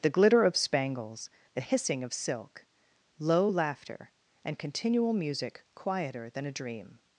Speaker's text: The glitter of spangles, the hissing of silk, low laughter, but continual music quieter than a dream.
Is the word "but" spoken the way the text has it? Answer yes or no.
no